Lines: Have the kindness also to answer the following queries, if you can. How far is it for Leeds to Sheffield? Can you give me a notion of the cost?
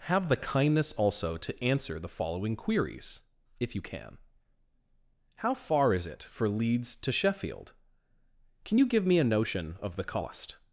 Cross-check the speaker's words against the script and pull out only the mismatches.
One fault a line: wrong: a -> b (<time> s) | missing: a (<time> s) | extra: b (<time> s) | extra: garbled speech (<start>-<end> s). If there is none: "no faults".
no faults